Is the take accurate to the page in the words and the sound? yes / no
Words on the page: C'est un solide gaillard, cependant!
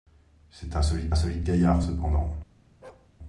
no